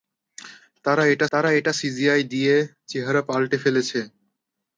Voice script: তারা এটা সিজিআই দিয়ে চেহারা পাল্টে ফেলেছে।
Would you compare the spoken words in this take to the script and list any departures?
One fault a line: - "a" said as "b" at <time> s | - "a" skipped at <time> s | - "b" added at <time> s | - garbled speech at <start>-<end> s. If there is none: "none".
- "তারা এটা" added at 1.3 s